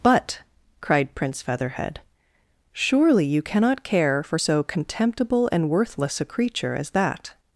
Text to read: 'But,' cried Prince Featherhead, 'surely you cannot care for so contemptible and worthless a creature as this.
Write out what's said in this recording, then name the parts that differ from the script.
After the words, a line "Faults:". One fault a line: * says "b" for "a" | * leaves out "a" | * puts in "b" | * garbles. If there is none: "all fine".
'But,' cried Prince Featherhead, 'surely you cannot care for so contemptible and worthless a creature as that.
Faults:
* says "that" for "this"